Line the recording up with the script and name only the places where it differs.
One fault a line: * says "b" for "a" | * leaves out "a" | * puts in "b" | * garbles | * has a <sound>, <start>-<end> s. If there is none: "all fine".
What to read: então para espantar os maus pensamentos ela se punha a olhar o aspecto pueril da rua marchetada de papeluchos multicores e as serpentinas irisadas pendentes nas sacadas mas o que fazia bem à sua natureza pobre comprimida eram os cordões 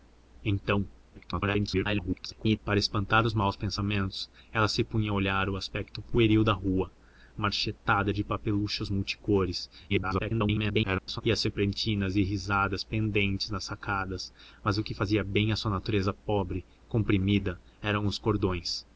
* garbles
* garbles